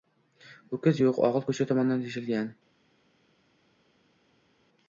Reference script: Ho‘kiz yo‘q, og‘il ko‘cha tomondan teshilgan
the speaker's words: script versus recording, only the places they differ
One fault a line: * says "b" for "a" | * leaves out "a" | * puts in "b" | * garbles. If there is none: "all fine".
all fine